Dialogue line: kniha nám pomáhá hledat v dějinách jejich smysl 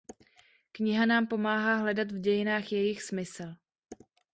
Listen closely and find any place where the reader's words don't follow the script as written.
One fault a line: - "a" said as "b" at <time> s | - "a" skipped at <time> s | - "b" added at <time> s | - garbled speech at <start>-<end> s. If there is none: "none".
none